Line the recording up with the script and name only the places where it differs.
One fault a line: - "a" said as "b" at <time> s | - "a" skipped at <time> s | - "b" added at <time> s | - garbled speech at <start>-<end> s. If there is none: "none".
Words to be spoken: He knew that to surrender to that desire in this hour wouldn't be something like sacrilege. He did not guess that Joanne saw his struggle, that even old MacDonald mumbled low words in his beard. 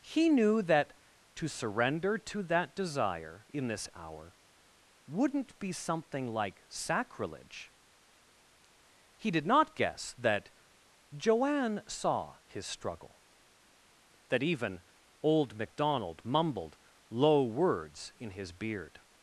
none